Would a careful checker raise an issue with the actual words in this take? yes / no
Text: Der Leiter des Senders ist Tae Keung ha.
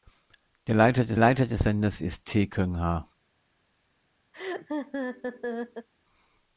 yes